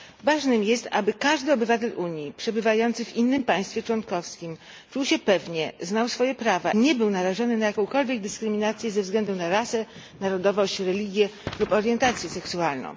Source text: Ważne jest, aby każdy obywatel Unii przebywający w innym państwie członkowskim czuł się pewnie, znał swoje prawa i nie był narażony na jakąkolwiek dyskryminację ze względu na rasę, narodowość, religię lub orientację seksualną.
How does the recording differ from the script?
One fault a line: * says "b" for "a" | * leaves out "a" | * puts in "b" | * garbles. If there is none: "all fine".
* leaves out "i"